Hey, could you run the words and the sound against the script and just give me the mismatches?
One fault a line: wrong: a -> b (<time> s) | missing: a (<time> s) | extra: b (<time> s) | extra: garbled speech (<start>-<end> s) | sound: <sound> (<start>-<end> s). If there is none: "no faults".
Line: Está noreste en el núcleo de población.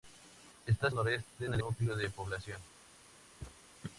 sound: thud (3.4-3.6 s)